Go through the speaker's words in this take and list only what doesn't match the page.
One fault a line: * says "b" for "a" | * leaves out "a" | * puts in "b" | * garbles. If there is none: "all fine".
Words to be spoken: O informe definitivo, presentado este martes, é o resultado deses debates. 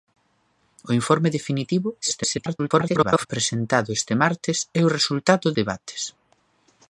* garbles
* leaves out "deses"